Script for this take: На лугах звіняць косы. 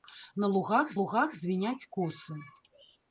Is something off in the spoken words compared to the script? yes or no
yes